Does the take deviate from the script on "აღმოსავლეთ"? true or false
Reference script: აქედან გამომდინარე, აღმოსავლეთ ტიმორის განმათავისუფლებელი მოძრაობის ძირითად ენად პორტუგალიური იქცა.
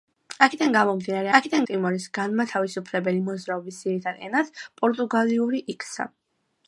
true